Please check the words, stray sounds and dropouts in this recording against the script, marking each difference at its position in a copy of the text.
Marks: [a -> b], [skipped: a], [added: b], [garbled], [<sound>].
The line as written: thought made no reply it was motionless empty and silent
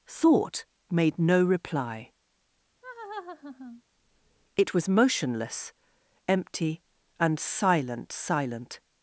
thought made no reply [laugh] it was motionless empty and silent [added: silent]